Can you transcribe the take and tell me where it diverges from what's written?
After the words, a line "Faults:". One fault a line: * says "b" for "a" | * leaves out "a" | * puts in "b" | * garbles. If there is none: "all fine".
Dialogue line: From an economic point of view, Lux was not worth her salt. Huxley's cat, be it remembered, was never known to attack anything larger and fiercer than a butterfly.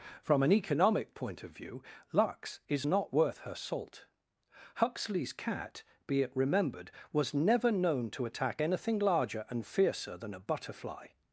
From an economic point of view, Lux is not worth her salt. Huxley's cat, be it remembered, was never known to attack anything larger and fiercer than a butterfly.
Faults:
* says "is" for "was"